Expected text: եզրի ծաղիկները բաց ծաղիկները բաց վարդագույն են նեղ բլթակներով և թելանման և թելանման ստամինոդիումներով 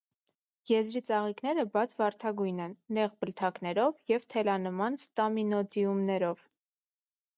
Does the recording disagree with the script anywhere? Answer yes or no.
yes